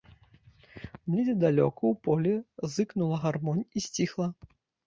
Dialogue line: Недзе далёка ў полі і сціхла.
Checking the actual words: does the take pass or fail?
fail